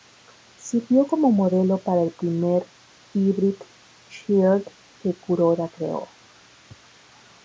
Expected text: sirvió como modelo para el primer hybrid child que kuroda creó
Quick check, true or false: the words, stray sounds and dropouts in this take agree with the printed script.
true